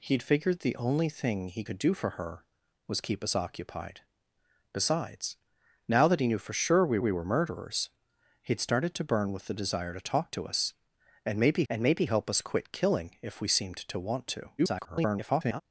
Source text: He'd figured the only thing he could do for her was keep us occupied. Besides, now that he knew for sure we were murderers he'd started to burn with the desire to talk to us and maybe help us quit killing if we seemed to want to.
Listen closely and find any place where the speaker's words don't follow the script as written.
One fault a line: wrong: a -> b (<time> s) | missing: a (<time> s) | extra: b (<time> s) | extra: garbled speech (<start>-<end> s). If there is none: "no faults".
extra: we (7.0 s)
extra: and maybe (11.7 s)
extra: garbled speech (14.6-15.6 s)